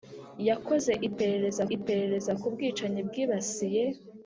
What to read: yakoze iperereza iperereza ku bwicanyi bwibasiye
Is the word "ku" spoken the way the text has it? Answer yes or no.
yes